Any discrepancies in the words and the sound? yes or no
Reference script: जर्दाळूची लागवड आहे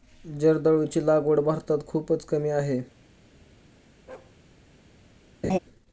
yes